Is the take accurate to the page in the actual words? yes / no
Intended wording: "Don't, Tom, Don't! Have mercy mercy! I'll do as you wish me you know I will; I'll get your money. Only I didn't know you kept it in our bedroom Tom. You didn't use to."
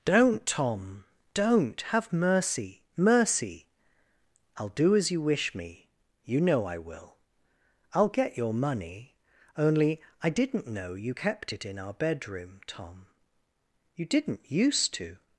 yes